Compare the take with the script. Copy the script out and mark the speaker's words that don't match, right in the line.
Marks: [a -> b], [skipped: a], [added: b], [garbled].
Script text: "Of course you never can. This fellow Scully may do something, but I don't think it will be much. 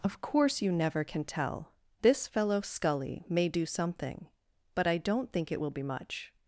"Of course you never can. [added: tell] This fellow Scully may do something, but I don't think it will be much.